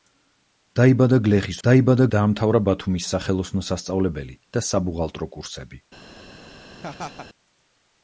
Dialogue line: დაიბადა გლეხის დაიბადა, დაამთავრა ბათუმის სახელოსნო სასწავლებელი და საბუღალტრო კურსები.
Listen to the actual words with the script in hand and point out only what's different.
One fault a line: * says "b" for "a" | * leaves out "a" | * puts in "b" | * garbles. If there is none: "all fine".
all fine